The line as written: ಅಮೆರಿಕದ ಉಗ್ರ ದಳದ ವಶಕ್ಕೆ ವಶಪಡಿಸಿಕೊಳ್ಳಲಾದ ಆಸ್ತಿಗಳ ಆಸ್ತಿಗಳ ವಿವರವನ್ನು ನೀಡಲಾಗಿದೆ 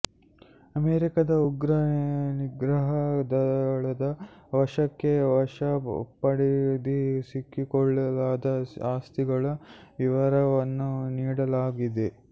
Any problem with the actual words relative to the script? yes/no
yes